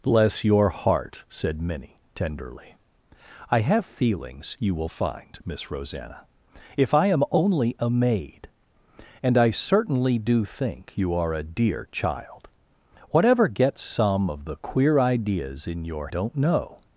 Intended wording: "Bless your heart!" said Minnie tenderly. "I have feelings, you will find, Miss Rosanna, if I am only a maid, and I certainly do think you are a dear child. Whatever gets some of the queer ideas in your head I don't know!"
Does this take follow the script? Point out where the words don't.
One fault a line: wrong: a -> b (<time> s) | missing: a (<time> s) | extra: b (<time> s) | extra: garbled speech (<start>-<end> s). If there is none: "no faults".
missing: head I (16.1 s)